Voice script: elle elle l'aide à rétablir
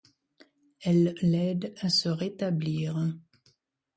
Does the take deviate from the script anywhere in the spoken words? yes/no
yes